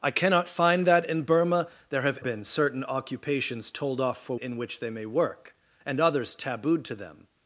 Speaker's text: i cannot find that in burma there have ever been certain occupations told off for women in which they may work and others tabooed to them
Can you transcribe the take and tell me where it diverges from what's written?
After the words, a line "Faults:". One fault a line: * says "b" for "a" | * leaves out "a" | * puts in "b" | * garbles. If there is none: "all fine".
i cannot find that in burma there have been certain occupations told off for in which they may work and others tabooed to them
Faults:
* leaves out "ever"
* leaves out "women"